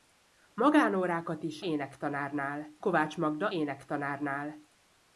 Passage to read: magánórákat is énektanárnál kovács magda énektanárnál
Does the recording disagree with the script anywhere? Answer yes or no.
no